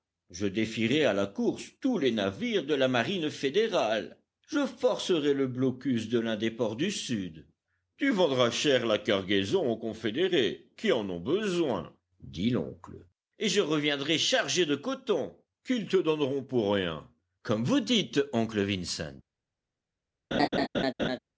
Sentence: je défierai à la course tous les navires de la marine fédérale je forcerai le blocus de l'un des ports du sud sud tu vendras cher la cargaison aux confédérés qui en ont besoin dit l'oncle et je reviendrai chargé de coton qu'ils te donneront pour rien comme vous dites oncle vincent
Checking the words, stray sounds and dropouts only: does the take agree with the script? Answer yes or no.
no